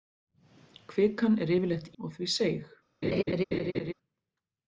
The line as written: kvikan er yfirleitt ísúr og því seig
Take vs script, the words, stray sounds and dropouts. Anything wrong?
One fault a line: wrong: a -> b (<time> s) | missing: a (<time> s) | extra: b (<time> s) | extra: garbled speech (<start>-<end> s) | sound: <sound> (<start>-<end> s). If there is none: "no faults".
missing: ísúr (1.9 s)
sound: laugh (3.0-3.9 s)